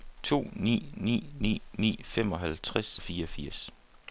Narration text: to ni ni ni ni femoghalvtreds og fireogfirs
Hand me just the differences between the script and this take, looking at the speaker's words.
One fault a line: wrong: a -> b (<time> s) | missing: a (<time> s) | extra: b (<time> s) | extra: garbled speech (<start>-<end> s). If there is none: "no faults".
no faults